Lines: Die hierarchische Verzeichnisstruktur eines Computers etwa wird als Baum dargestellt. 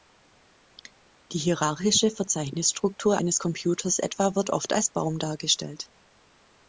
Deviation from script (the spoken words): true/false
true